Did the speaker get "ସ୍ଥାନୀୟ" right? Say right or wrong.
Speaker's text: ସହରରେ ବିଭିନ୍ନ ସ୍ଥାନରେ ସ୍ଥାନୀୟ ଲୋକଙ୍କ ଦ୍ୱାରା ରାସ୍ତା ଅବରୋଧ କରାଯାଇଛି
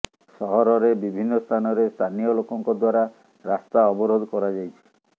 right